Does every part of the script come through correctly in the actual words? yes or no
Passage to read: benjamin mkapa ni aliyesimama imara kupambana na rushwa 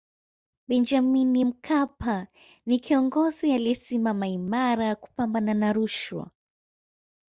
no